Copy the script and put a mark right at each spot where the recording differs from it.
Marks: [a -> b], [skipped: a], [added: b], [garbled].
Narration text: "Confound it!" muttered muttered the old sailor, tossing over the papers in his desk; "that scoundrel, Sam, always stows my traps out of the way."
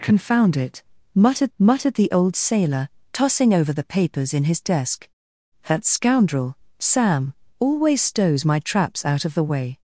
"Confound it!" muttered muttered the old sailor, tossing over the papers in his desk; "that scoundrel, Sam, always stows my traps out of the way."